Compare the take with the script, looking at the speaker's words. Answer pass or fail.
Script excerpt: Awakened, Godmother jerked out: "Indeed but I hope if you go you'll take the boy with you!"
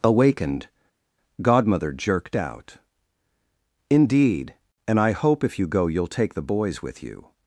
fail